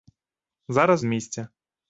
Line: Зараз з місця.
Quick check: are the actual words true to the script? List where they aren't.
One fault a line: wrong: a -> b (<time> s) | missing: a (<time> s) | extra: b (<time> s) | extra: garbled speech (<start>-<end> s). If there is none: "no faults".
no faults